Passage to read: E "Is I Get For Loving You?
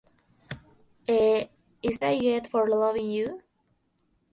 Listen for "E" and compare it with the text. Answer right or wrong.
right